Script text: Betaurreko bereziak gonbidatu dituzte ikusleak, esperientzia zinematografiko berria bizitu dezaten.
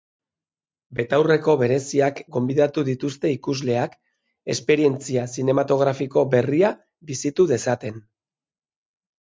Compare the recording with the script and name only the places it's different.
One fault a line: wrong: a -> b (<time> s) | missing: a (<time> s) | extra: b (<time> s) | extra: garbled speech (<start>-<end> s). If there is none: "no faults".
no faults